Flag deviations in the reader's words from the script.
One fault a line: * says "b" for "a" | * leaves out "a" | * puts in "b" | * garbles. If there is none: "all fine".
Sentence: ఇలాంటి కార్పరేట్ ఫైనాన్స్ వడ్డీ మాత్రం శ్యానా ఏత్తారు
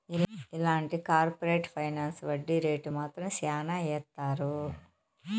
* puts in "రేటు"